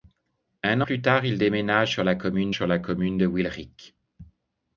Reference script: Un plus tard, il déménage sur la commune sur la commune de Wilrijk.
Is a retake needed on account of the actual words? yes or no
no